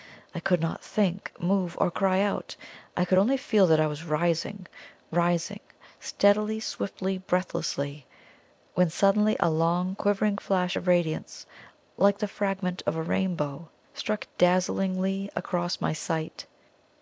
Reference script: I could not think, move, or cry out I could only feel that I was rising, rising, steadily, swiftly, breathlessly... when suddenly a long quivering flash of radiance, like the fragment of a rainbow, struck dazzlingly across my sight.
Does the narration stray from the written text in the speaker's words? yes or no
no